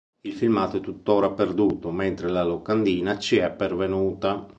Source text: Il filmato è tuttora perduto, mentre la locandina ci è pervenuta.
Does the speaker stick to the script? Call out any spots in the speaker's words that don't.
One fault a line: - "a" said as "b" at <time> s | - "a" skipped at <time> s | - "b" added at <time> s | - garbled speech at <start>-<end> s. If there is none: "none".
none